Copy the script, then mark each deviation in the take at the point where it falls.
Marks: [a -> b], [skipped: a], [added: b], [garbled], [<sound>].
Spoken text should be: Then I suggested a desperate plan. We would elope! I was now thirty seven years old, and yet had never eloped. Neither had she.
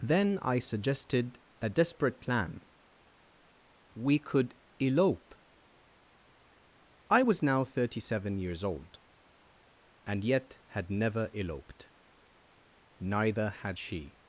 Then I suggested a desperate plan. We [would -> could] elope! I was now thirty seven years old, and yet had never eloped. Neither had she.